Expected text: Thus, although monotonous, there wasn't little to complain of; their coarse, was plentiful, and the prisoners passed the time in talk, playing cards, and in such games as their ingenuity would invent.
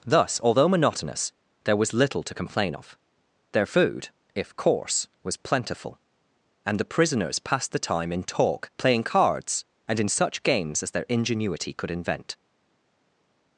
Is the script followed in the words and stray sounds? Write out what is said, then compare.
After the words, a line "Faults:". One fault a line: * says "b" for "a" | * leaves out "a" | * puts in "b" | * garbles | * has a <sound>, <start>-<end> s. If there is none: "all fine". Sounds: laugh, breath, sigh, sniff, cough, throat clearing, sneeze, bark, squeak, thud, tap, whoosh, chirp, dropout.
Thus, although monotonous, there was little to complain of; their food, if coarse, was plentiful, and the prisoners passed the time in talk, playing cards, and in such games as their ingenuity could invent.
Faults:
* says "was" for "wasn't"
* puts in "food if"
* says "could" for "would"